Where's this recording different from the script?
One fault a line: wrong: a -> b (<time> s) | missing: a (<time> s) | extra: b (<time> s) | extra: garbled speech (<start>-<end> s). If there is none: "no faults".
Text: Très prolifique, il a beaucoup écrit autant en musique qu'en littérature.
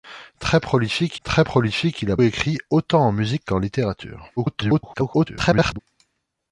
extra: très prolifique (1.2 s)
missing: beaucoup (2.2 s)
extra: garbled speech (4.4-5.8 s)